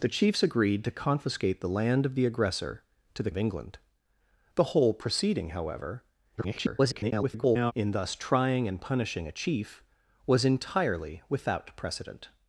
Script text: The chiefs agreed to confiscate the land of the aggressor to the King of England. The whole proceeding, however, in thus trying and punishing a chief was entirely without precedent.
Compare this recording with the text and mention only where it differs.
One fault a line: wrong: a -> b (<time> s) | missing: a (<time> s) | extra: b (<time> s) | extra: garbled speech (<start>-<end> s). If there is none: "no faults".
missing: King (3.3 s)
extra: garbled speech (6.4-7.7 s)